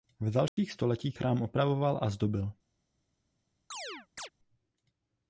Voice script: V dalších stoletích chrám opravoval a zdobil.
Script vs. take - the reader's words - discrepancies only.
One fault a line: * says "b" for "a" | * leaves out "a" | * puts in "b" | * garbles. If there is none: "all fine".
all fine